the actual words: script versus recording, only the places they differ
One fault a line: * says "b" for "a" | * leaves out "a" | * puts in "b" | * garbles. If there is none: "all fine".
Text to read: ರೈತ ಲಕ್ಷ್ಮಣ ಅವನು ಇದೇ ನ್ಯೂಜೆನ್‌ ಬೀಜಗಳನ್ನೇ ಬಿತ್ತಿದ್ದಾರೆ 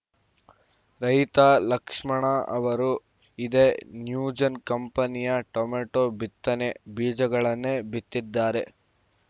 * says "ಅವರು" for "ಅವನು"
* puts in "ಕಂಪನಿಯ ಟೊಮೆಟೋ ಬಿತ್ತನೆ"